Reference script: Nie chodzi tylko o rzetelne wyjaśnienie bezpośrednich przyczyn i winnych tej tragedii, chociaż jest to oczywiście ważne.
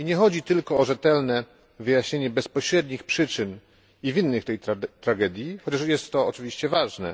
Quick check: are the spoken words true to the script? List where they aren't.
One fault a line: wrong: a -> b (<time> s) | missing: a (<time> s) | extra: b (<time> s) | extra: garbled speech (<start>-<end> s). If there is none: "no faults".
no faults